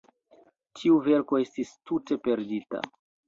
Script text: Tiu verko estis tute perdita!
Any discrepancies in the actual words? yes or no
no